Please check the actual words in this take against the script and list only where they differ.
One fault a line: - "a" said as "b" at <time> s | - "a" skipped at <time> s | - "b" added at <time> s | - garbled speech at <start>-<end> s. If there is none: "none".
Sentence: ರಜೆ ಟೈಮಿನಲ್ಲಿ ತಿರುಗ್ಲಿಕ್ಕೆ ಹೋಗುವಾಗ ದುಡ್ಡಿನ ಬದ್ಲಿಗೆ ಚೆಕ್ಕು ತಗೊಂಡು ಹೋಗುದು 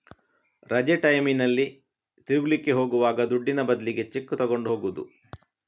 none